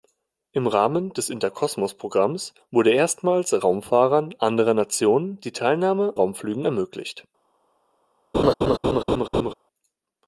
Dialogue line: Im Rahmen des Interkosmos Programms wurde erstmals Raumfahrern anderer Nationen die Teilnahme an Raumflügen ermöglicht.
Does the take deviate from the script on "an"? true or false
true